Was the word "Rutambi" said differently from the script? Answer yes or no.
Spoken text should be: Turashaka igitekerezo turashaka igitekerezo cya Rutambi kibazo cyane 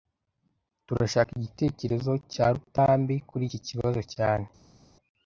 yes